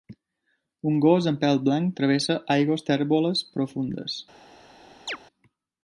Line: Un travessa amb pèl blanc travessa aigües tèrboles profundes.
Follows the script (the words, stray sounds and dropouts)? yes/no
no